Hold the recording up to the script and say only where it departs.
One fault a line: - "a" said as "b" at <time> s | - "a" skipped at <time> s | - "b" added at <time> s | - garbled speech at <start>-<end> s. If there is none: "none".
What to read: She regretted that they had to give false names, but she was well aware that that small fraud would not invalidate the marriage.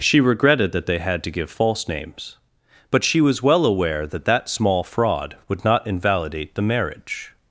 none